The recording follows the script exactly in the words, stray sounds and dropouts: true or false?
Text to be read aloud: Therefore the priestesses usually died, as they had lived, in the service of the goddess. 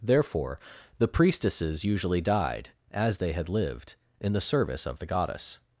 true